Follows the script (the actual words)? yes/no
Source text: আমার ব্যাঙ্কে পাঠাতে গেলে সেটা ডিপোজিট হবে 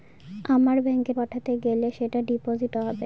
yes